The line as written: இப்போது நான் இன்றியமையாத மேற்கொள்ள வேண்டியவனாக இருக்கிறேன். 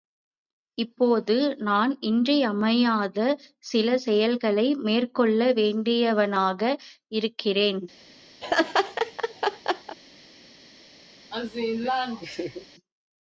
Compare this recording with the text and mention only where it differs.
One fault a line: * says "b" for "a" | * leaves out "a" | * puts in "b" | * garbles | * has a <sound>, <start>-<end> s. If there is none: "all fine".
* puts in "சில செயல்களை"
* has a laugh, 8.4-10.0 s
* has a laugh, 11.3-12.7 s